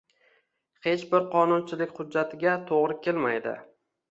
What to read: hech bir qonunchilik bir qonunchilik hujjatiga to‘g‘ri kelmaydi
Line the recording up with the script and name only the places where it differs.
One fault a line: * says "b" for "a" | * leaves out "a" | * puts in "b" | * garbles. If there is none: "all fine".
* leaves out "bir qonunchilik"